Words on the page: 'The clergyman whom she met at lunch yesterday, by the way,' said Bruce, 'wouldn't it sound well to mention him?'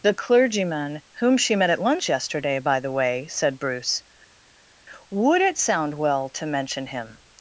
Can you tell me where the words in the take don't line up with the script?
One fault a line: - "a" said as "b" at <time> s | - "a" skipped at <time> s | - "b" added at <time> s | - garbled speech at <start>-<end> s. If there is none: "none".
- "wouldn't" said as "would" at 5.1 s